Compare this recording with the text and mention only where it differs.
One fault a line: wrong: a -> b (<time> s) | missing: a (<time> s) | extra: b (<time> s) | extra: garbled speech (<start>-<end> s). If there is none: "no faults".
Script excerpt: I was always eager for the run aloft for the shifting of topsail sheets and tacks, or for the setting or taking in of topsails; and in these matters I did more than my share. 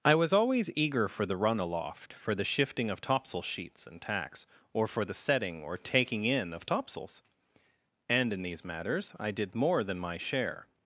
no faults